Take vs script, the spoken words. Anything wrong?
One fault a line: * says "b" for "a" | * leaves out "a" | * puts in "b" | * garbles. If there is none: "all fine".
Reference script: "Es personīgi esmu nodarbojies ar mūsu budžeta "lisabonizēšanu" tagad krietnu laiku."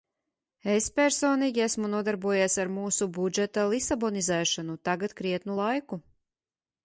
all fine